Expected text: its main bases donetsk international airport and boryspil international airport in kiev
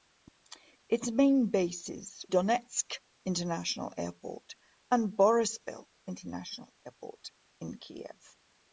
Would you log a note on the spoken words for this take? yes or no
no